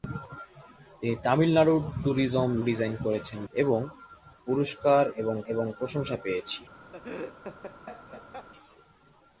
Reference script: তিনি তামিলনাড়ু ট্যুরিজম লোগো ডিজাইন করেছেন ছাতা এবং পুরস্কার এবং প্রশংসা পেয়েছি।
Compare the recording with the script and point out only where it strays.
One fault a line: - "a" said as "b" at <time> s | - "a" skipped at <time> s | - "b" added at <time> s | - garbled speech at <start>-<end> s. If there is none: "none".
- "লোগো" skipped at 2.5 s
- "ছাতা" skipped at 3.4 s
- "এবং" added at 5.5 s